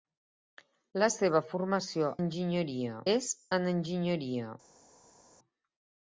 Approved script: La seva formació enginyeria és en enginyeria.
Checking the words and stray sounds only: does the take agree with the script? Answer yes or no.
yes